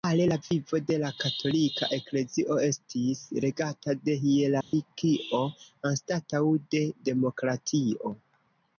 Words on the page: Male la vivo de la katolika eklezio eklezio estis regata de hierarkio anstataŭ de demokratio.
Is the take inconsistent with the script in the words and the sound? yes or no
yes